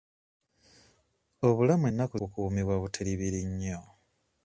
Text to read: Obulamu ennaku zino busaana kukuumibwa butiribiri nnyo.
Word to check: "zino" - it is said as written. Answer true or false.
false